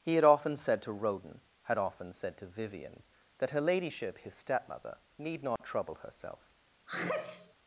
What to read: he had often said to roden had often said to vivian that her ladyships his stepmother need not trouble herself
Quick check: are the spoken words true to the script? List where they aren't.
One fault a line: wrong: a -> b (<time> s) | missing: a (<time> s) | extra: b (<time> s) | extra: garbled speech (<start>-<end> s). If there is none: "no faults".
wrong: ladyships -> ladyship (3.6 s)